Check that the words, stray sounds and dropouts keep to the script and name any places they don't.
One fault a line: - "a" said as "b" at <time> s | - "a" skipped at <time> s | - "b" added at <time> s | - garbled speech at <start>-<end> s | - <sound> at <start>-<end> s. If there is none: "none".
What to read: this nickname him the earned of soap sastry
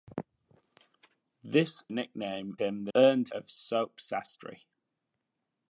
none